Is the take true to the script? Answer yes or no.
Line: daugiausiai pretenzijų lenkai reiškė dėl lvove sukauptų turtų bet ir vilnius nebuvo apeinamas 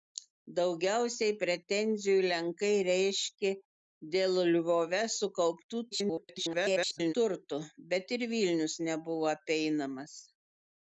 no